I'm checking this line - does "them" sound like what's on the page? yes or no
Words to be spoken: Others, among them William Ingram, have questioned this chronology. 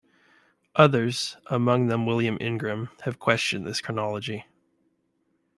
yes